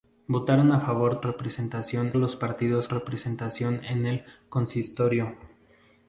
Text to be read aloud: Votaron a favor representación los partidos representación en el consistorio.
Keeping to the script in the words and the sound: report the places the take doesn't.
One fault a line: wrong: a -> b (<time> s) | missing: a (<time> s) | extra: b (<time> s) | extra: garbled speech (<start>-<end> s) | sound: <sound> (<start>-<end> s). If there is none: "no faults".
no faults